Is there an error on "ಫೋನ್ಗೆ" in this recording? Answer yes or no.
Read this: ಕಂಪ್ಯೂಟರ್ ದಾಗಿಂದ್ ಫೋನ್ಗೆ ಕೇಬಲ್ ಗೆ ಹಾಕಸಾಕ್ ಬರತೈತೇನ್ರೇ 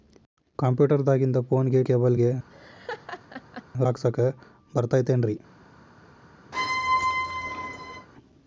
no